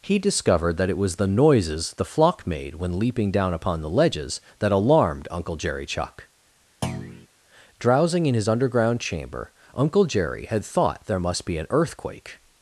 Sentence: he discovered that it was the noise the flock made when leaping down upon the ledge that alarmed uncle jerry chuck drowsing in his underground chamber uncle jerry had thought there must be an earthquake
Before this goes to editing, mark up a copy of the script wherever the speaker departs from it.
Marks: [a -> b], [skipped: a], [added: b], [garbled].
he discovered that it was the [noise -> noises] the flock made when leaping down upon the [ledge -> ledges] that alarmed uncle jerry chuck drowsing in his underground chamber uncle jerry had thought there must be an earthquake